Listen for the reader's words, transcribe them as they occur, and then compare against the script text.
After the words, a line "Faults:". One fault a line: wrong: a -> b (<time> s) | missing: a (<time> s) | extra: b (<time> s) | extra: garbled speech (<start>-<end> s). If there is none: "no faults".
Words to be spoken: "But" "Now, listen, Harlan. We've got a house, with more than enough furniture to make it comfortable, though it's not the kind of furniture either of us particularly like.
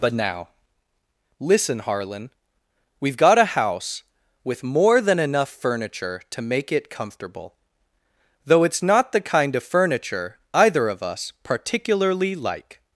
"But" "Now, listen, Harlan. We've got a house, with more than enough furniture to make it comfortable, though it's not the kind of furniture either of us particularly like.
Faults:
no faults